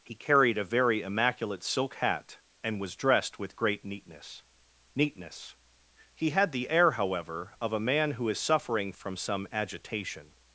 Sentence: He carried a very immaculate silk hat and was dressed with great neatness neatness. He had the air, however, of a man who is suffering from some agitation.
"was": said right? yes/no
yes